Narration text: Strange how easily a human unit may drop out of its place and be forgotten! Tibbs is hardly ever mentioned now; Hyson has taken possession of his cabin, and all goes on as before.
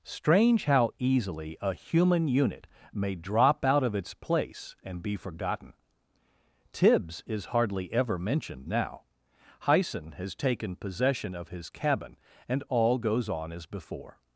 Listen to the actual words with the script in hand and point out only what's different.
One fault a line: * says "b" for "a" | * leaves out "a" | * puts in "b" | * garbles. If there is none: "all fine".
all fine